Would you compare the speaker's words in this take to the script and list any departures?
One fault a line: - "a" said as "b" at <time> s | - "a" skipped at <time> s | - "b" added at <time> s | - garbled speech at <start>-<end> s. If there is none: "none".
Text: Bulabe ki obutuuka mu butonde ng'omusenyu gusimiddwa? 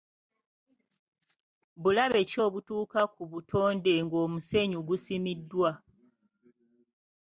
- "mu" said as "ku" at 3.1 s